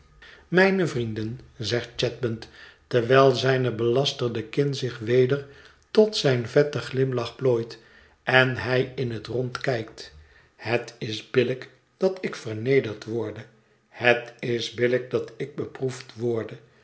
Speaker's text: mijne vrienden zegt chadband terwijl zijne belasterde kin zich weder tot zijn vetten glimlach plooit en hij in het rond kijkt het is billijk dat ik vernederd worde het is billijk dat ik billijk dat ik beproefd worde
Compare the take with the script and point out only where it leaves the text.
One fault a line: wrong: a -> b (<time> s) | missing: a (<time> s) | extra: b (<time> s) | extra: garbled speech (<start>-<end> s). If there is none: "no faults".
missing: billijk dat ik (15.6 s)